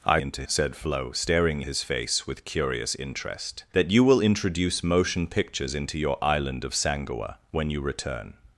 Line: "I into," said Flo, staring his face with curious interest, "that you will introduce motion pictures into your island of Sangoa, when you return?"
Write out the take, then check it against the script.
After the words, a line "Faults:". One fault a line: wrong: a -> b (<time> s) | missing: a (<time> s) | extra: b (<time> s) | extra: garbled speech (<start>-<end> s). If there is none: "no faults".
"I into," said Flo, staring his face with curious interest, "that you will introduce motion pictures into your island of Sangoa, when you return?"
Faults:
no faults